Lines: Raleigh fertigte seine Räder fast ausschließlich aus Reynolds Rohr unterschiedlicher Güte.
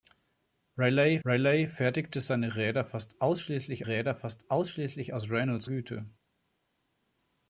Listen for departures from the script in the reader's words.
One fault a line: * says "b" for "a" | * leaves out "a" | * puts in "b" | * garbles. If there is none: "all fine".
* puts in "raleigh"
* puts in "Räder fast ausschließlich"
* leaves out "Rohr unterschiedlicher"